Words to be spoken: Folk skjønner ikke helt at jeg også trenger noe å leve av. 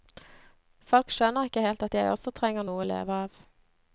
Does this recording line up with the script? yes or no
yes